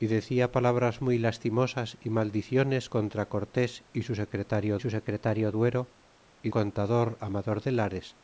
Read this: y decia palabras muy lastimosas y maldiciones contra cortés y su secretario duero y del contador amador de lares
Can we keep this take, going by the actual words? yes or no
no